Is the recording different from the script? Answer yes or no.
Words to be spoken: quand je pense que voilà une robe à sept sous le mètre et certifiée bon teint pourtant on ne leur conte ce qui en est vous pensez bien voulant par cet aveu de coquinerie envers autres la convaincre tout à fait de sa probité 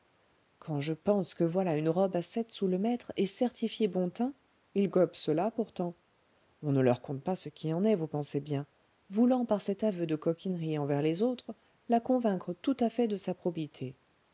yes